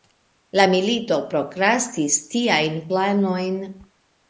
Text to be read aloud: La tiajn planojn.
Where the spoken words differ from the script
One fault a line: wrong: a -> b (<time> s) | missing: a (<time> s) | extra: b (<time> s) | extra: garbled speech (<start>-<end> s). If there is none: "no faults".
extra: milito prokrastis (0.7 s)